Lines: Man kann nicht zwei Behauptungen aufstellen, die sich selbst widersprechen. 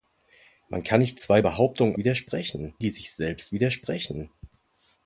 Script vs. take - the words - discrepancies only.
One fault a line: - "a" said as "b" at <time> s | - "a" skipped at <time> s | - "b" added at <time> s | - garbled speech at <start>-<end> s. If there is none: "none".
- "aufstellen" said as "widersprechen" at 2.0 s